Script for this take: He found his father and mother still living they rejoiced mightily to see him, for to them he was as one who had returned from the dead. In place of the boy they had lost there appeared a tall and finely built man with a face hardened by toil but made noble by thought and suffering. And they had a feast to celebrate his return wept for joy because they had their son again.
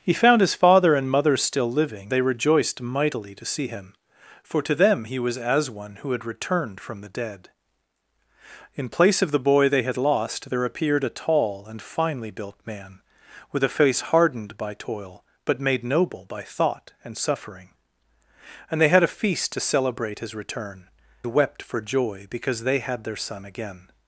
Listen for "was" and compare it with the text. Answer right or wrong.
right